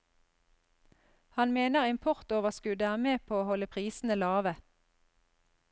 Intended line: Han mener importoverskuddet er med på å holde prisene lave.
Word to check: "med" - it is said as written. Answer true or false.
true